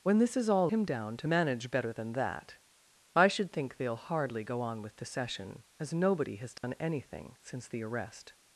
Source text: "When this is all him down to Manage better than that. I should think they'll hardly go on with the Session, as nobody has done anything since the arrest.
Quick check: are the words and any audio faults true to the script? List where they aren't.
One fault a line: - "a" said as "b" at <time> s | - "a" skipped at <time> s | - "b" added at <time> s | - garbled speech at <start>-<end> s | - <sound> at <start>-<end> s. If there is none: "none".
- dropout at 6.6-6.6 s